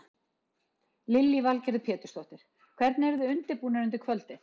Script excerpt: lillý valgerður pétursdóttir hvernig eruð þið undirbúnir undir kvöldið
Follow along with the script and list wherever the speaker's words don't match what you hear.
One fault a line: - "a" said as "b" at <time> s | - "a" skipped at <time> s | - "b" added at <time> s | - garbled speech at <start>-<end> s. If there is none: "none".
none